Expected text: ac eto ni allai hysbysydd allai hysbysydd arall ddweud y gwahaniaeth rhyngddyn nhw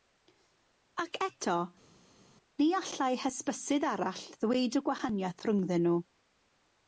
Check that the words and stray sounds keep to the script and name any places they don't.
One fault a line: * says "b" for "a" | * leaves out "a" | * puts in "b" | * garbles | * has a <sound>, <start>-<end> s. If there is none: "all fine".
* leaves out "allai hysbysydd"